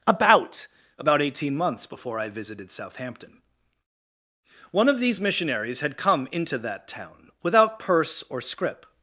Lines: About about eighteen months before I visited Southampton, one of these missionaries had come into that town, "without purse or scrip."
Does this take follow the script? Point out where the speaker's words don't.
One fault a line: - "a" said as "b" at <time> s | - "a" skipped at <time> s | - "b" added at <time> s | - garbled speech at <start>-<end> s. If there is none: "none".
none